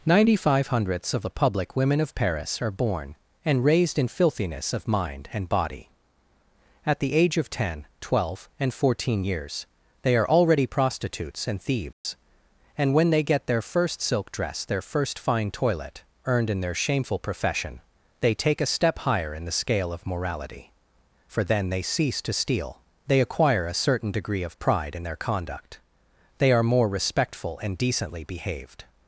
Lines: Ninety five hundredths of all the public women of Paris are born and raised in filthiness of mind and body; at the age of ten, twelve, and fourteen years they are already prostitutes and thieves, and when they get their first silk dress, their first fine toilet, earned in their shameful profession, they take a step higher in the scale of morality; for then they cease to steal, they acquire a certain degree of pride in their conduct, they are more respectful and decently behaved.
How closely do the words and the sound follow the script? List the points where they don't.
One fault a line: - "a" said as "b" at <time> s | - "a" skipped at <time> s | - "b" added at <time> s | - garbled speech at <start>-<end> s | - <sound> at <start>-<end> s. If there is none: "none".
- "all" skipped at 1.3 s
- dropout at 11.9-12.1 s